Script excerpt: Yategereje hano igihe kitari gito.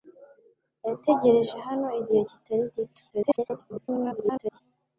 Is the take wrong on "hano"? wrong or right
right